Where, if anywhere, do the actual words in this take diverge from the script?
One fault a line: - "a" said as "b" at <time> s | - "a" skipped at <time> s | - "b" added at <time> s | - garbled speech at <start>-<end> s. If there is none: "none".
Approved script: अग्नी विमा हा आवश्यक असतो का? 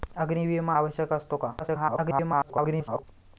- "हा" skipped at 0.8 s
- garbled speech at 1.6-3.0 s